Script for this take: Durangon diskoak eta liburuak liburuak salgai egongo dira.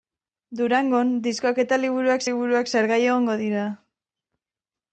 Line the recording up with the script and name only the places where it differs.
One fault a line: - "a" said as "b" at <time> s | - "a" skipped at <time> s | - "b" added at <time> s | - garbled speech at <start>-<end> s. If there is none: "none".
none